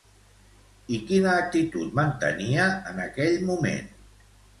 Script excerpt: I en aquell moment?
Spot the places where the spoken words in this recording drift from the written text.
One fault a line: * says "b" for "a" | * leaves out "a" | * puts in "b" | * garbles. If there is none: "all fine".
* puts in "quina actitud mantenia"